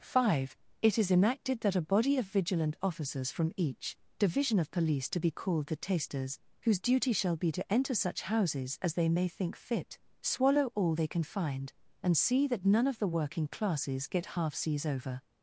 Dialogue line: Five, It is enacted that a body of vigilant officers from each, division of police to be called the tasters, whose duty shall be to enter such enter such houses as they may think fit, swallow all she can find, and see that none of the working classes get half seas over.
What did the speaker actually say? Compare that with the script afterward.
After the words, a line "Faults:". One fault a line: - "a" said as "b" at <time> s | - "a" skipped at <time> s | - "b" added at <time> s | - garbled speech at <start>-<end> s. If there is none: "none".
Five, It is enacted that a body of vigilant officers from each, division of police to be called the tasters, whose duty shall be to enter such houses as they may think fit, swallow all they can find, and see that none of the working classes get half seas over.
Faults:
- "enter such" skipped at 8.2 s
- "she" said as "they" at 10.9 s